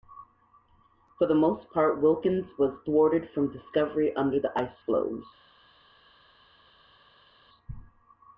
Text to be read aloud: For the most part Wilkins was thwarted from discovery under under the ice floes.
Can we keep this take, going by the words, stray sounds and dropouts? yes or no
no